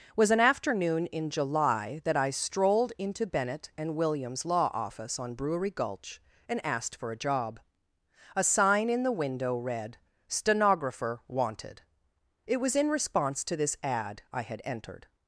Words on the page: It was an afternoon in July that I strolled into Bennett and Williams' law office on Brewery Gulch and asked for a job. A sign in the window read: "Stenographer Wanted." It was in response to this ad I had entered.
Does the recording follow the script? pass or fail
fail